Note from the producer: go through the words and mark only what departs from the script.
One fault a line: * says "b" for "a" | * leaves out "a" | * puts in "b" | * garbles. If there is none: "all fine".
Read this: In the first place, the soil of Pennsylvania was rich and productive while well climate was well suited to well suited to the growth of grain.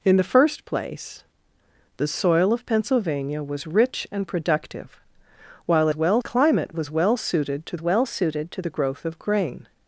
all fine